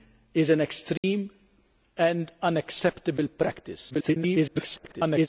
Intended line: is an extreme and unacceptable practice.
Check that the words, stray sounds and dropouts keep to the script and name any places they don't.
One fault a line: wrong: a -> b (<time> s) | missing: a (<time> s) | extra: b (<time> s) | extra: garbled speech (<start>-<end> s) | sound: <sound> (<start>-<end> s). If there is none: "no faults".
sound: dropout (1.0-1.0 s)
extra: garbled speech (3.9-5.3 s)